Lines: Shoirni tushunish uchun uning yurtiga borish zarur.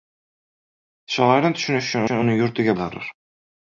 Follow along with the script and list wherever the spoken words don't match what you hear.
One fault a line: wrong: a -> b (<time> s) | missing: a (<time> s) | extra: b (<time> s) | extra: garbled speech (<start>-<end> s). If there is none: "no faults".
extra: uchun (2.0 s)
missing: borish (2.7 s)